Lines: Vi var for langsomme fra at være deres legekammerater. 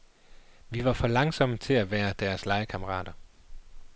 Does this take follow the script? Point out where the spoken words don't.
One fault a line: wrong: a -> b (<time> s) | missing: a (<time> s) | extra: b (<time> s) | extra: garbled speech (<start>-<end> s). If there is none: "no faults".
wrong: fra -> til (1.6 s)